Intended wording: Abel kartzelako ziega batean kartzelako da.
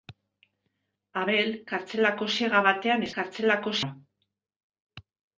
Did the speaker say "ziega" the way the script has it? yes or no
yes